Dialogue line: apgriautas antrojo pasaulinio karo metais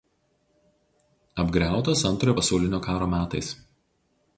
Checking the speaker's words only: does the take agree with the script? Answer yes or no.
yes